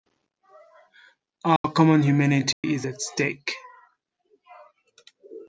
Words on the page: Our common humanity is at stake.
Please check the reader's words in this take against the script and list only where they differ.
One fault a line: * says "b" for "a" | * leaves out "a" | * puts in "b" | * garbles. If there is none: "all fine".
all fine